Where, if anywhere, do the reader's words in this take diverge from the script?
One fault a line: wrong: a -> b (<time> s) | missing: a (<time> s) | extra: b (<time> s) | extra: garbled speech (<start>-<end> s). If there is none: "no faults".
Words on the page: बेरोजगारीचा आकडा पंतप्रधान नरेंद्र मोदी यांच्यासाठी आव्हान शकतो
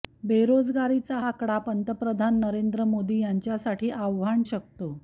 no faults